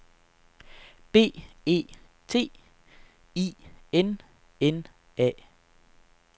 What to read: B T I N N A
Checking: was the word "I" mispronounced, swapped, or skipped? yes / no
no